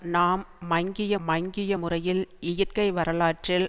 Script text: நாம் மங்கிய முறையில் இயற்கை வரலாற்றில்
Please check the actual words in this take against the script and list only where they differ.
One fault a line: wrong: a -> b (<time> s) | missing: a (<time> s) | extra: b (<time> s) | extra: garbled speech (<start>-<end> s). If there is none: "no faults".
extra: மங்கிய (1.2 s)